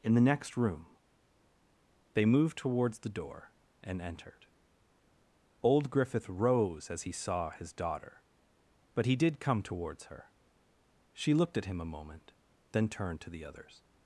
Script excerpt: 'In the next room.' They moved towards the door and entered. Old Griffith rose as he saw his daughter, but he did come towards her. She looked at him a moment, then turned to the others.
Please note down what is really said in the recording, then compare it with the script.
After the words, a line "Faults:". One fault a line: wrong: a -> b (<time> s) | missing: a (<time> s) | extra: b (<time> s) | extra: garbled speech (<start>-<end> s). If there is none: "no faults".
'In the next room.' They moved towards the door and entered. Old Griffith rose as he saw his daughter, but he did come towards her. She looked at him a moment, then turned to the others.
Faults:
no faults